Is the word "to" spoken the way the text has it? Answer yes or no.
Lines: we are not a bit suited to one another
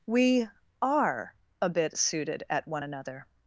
no